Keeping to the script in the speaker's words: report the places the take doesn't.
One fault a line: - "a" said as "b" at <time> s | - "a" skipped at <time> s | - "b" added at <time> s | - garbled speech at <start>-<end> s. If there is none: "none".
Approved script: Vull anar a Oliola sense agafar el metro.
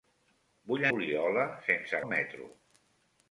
- "anar a" skipped at 0.8 s
- "agafar" skipped at 2.0 s